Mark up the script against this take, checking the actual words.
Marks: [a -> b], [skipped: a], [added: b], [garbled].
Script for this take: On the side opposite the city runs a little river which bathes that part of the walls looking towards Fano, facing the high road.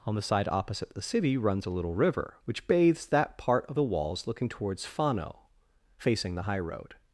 On the side opposite the city runs a little river which bathes that part of the walls looking towards Fano, facing the high road.